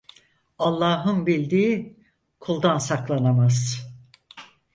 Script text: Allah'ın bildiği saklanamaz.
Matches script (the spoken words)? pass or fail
fail